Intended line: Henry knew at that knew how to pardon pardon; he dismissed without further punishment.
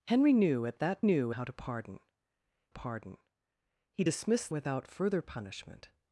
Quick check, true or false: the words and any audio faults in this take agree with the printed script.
true